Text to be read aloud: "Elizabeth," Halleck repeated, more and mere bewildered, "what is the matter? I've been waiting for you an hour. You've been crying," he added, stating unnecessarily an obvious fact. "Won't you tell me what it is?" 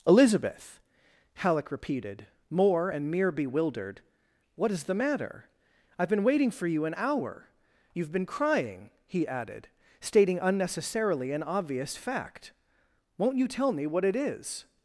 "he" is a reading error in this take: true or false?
false